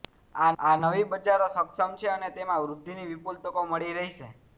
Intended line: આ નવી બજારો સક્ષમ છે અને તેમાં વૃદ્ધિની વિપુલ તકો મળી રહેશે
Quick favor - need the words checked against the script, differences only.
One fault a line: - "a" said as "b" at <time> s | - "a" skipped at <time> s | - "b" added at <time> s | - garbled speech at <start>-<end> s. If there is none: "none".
- "આ" added at 0.6 s